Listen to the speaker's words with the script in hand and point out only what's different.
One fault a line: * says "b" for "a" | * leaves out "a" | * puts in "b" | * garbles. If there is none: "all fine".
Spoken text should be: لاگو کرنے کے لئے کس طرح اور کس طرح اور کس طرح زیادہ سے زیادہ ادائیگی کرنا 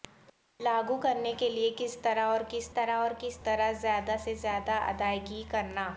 all fine